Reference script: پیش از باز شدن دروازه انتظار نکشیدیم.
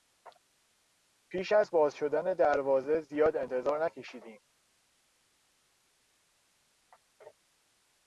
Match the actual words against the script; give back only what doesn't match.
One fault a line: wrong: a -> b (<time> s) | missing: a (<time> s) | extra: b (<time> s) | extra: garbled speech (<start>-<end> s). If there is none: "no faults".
extra: زیاد (3.0 s)